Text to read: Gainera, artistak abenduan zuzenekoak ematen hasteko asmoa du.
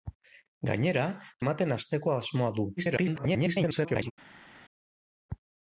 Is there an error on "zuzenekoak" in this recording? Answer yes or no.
yes